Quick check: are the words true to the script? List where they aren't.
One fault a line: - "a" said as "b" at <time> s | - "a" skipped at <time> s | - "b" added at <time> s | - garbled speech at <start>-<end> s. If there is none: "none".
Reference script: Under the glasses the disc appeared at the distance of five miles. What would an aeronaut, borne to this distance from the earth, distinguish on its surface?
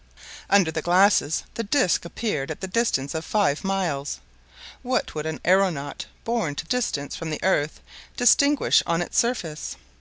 - "this" skipped at 6.7 s